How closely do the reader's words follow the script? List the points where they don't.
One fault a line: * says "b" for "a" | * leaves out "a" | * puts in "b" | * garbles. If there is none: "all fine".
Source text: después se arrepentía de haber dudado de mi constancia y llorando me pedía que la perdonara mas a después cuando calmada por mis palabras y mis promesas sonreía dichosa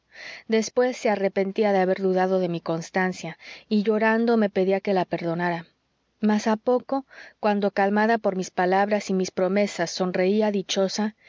* says "poco" for "después"